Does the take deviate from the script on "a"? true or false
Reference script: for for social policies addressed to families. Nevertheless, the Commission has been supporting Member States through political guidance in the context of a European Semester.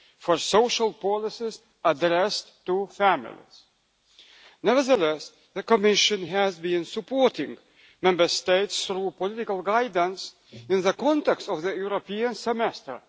true